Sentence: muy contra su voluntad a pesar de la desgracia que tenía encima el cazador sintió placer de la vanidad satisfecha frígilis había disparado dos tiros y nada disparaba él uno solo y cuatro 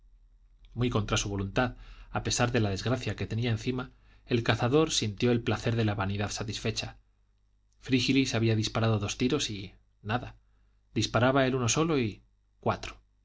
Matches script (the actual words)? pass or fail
fail